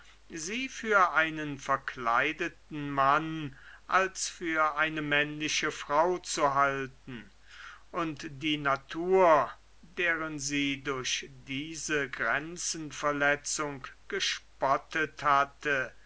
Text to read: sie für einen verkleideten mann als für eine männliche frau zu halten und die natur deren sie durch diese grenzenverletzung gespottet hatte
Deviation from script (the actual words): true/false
false